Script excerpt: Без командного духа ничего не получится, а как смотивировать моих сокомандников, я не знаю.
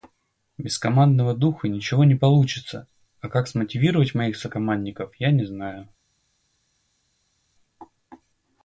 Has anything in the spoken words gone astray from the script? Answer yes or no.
no